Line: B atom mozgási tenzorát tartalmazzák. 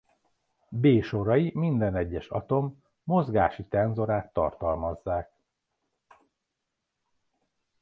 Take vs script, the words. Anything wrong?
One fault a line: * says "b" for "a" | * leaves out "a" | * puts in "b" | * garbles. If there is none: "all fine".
* puts in "sorai minden egyes"